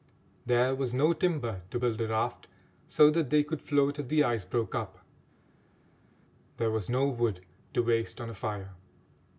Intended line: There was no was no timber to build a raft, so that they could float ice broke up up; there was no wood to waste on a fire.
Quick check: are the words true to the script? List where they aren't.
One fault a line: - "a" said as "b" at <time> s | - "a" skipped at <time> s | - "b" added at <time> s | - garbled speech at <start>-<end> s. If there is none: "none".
- "was no" skipped at 1.1 s
- "if the" added at 4.0 s
- "up" skipped at 5.0 s